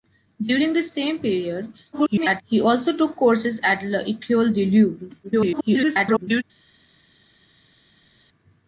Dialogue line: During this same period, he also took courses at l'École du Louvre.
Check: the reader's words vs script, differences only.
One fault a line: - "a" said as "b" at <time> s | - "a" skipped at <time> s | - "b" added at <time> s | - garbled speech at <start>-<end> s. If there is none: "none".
- garbled speech at 1.9-2.4 s
- garbled speech at 5.2-6.4 s